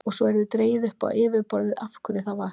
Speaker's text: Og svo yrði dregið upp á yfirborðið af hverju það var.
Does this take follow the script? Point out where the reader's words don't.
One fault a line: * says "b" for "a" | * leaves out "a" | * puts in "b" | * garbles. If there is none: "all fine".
all fine